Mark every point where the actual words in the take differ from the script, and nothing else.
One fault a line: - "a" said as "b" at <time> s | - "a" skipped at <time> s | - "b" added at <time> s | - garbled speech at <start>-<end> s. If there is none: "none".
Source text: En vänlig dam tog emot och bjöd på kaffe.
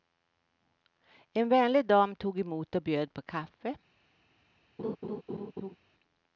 none